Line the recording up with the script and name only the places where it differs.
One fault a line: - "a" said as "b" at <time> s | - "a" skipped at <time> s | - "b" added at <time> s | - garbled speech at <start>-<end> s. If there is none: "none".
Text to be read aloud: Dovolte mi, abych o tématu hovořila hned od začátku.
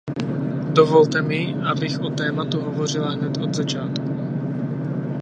none